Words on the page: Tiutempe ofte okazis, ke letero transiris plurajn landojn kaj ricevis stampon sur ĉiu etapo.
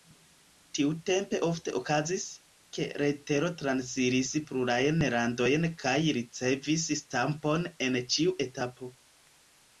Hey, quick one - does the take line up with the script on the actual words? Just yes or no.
no